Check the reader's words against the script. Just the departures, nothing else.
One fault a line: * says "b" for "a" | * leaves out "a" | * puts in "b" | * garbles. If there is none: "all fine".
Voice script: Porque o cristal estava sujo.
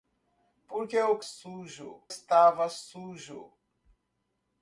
* says "sujo" for "cristal"